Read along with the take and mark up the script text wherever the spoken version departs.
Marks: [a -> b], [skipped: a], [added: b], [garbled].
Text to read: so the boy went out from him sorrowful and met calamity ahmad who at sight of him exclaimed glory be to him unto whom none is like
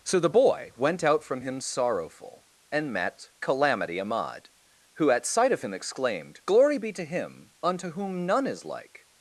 so the boy went out from him sorrowful and met calamity ahmad who at sight of him exclaimed glory be to him unto whom none is like